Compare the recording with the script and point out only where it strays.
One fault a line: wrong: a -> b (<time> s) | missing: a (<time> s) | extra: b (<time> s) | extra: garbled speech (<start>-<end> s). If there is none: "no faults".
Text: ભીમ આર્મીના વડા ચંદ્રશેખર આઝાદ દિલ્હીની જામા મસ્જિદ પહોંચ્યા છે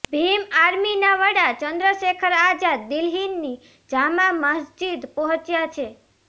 no faults